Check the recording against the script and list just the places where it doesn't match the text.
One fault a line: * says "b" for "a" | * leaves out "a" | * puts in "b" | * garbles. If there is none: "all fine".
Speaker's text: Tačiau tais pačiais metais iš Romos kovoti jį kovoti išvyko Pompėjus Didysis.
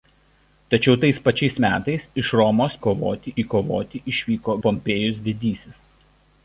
all fine